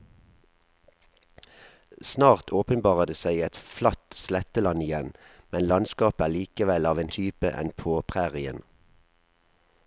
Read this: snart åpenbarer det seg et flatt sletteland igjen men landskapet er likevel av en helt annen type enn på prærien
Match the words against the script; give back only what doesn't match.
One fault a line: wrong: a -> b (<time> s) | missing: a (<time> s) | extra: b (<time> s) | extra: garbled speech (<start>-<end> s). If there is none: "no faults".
missing: helt annen (7.1 s)